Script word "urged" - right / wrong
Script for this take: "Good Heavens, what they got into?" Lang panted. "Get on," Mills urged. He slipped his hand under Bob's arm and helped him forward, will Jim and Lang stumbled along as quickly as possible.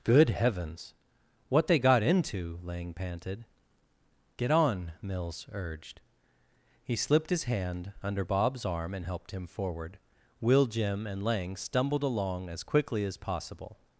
right